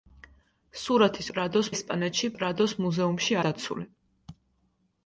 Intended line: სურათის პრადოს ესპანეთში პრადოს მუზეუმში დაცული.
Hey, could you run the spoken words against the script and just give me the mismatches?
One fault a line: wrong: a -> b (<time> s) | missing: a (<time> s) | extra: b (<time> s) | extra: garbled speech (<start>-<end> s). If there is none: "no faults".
no faults